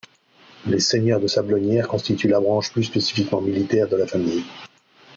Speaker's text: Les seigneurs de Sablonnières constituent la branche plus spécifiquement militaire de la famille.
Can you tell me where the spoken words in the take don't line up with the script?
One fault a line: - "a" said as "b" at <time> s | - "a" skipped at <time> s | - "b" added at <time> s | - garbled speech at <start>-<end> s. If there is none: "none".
none